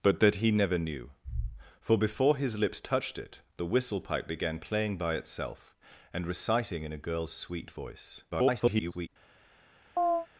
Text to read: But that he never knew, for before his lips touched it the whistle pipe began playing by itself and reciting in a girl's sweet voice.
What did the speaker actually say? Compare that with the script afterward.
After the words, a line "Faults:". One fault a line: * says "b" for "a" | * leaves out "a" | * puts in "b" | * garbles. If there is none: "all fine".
But that he never knew, for before his lips touched it the whistle pipe began playing by itself and reciting in a girl's sweet voice. [garbled]
Faults:
* garbles